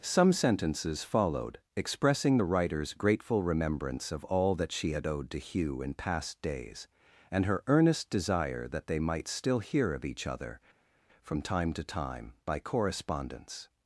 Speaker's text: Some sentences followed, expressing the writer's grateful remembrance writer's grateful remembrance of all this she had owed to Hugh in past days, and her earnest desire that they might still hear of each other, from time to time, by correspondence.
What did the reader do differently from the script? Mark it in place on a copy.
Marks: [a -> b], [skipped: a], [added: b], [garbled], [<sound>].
Some sentences followed, expressing the writer's grateful remembrance [skipped: writer's grateful remembrance] of all [this -> that] she had owed to Hugh in past days, and her earnest desire that they might still hear of each other, from time to time, by correspondence.